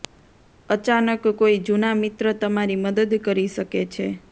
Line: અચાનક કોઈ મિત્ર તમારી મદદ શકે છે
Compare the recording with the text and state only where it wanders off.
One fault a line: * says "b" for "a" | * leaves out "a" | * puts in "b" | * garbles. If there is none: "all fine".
* puts in "જૂના"
* puts in "કરી"